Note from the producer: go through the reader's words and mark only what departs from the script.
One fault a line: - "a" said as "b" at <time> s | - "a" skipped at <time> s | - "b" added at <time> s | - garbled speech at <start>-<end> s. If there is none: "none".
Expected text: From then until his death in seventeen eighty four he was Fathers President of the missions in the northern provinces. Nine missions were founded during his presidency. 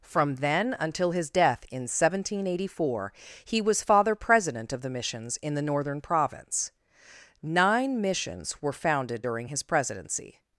- "Fathers" said as "Father" at 3.8 s
- "provinces" said as "province" at 6.0 s